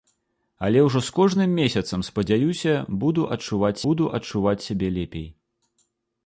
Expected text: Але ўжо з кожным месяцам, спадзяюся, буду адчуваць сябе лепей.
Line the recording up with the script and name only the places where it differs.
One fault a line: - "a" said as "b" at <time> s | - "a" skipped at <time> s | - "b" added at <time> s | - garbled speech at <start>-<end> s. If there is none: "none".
- "буду адчуваць" added at 3.9 s